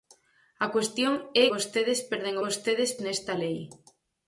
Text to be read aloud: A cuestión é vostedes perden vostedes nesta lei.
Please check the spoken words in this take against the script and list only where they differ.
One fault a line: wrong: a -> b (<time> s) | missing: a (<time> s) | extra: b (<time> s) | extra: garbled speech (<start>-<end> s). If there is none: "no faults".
no faults